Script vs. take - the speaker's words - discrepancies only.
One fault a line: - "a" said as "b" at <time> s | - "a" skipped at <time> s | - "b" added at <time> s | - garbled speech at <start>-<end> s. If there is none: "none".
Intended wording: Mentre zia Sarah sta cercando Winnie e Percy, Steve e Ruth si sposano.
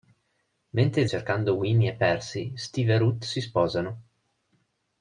- "zia Sarah sta" skipped at 1.1 s